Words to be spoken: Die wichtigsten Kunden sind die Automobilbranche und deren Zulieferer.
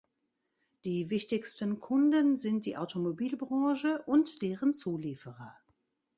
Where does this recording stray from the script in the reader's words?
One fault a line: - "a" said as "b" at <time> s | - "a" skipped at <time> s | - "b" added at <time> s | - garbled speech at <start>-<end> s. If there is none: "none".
none